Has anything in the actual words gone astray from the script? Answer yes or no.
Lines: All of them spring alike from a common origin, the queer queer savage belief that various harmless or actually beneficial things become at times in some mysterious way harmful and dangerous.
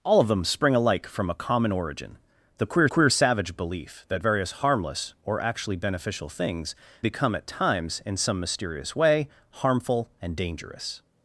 no